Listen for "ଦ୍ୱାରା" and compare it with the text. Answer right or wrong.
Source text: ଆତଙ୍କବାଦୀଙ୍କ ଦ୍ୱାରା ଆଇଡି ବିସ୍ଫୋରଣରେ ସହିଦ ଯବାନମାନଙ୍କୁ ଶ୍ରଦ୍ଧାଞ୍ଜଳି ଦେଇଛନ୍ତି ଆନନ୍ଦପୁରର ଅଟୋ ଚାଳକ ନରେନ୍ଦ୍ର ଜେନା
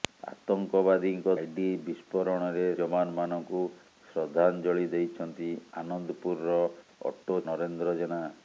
wrong